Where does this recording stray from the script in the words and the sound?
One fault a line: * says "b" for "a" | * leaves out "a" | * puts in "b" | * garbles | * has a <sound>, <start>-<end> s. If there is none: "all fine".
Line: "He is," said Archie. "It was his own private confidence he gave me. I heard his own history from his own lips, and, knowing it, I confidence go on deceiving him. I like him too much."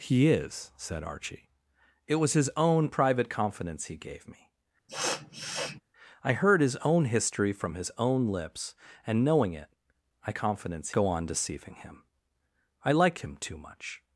* has a sniff, 4.9-5.8 s